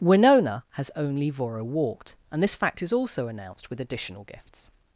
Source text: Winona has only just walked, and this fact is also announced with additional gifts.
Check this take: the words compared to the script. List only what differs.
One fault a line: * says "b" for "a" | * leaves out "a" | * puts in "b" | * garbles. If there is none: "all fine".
* says "voro" for "just"